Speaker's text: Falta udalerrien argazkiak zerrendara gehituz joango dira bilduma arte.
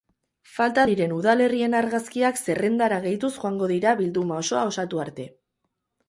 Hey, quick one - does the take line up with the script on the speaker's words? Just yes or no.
no